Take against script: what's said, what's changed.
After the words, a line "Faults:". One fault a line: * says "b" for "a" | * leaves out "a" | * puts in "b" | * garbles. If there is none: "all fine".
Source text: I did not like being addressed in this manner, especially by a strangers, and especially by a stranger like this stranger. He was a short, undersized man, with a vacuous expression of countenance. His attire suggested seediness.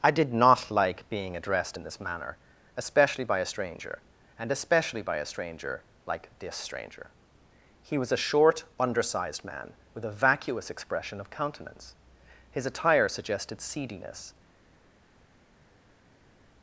I did not like being addressed in this manner, especially by a stranger, and especially by a stranger like this stranger. He was a short, undersized man, with a vacuous expression of countenance. His attire suggested seediness.
Faults:
* says "stranger" for "strangers"